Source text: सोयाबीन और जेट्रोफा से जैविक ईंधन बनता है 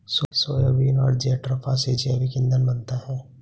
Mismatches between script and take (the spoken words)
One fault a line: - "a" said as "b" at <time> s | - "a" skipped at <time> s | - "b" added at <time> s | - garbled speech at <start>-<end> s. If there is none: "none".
none